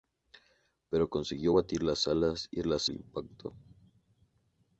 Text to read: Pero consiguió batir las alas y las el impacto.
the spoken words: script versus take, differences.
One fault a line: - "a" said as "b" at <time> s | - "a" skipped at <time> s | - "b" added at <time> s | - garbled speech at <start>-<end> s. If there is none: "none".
none